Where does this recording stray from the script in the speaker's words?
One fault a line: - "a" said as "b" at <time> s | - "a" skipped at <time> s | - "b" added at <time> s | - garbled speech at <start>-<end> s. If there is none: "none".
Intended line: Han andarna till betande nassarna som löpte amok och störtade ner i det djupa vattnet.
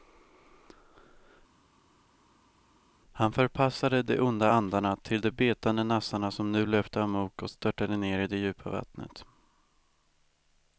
- "förpassade de onda" added at 3.3 s
- "de" added at 5.2 s
- "nu" added at 6.5 s